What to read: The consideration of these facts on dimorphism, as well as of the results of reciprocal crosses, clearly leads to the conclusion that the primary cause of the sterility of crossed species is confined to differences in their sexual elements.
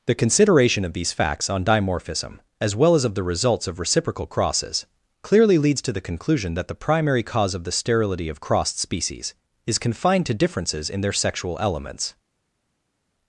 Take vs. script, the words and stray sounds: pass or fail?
pass